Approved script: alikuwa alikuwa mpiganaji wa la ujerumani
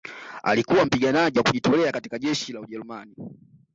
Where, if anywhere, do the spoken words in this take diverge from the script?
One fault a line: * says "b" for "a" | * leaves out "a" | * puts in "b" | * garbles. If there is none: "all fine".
* leaves out "alikuwa"
* puts in "kujitolea katika jeshi"